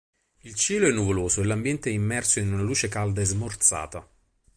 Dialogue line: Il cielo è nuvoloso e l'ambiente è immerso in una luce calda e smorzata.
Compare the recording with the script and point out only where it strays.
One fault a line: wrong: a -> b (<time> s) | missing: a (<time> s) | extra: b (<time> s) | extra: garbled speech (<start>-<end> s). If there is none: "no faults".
no faults